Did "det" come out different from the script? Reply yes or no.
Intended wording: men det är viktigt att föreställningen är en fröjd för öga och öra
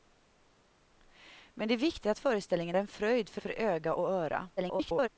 no